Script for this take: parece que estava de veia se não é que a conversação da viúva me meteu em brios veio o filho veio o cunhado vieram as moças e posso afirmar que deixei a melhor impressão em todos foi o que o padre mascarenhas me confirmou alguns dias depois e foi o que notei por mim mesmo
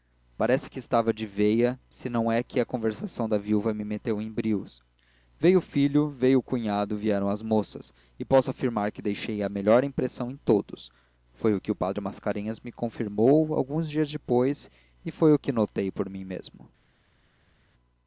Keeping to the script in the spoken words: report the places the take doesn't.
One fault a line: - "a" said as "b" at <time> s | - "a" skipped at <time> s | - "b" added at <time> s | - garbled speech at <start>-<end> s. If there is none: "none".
none